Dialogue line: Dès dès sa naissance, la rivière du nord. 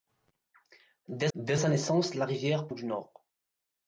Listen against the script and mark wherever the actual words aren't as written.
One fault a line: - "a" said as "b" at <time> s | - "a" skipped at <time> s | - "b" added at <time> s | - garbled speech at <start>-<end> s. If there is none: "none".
none